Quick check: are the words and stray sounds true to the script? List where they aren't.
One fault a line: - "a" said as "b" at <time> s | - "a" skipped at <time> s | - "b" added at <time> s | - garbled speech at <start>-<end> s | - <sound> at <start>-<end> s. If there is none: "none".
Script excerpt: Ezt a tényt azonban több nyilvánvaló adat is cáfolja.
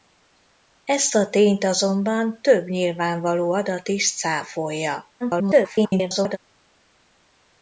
- garbled speech at 5.2-6.4 s